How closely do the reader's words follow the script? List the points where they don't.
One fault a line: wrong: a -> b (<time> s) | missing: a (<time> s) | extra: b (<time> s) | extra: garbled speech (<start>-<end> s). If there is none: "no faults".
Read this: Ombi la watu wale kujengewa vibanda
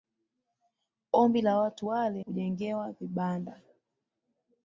no faults